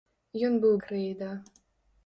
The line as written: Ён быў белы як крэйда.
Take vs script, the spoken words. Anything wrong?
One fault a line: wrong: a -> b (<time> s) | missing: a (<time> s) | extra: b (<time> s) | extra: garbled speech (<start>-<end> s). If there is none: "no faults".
missing: белы як (0.7 s)